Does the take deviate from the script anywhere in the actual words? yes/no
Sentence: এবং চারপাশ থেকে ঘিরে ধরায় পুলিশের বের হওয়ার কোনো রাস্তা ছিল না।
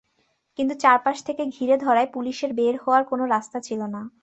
yes